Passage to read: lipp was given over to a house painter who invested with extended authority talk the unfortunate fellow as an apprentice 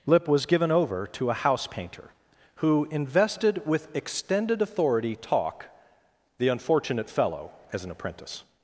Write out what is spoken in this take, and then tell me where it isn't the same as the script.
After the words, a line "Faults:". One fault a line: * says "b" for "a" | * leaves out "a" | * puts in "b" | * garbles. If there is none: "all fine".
lipp was given over to a house painter who invested with extended authority talk the unfortunate fellow as an apprentice
Faults:
all fine